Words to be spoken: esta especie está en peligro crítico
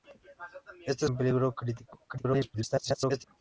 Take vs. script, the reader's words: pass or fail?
fail